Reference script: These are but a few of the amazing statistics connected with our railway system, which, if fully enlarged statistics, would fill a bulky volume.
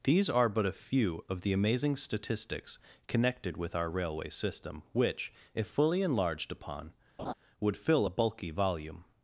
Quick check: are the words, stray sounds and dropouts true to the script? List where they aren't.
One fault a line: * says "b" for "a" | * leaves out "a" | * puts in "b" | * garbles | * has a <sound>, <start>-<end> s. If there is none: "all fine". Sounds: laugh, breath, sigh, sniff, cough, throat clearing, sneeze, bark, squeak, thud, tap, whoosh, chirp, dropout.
* says "upon" for "statistics"
* has a laugh, 7.2-7.3 s